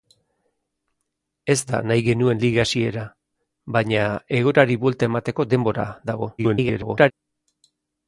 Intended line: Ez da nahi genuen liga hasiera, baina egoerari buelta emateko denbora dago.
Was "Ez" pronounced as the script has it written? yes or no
yes